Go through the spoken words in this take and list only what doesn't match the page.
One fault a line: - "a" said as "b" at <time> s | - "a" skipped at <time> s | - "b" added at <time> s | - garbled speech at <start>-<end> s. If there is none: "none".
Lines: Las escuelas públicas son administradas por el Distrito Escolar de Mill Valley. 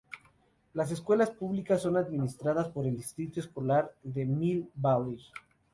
none